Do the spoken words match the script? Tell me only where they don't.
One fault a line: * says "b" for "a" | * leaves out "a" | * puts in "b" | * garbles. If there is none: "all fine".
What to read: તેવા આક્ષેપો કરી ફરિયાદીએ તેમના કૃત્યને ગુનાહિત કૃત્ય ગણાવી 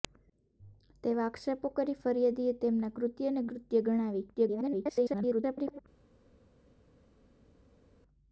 * leaves out "ગુનાહિત"
* garbles